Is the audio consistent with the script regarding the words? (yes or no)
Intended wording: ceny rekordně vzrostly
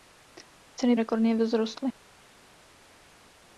yes